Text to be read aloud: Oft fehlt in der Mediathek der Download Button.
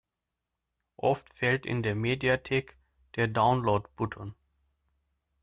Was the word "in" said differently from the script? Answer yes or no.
no